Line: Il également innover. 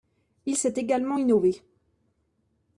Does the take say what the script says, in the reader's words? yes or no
no